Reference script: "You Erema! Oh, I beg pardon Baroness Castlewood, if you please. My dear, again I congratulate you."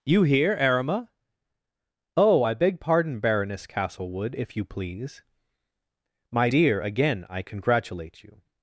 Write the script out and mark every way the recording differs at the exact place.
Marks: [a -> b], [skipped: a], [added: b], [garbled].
"You [added: here] Erema! Oh, I beg pardon Baroness Castlewood, if you please. My dear, again I congratulate you."